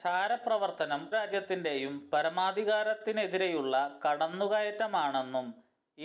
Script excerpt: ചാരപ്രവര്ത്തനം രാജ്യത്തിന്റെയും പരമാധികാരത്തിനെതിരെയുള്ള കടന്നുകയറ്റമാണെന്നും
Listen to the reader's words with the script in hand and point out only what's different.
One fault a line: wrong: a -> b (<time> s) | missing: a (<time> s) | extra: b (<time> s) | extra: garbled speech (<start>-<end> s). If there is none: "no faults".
no faults